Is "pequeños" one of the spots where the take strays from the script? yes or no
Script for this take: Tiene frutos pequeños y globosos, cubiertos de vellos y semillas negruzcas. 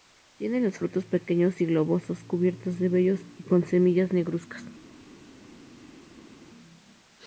no